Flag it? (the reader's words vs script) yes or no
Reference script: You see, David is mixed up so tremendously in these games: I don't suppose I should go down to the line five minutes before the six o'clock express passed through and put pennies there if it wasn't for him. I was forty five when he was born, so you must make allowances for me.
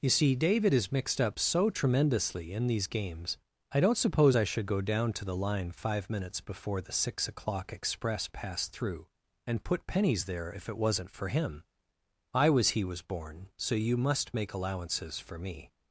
yes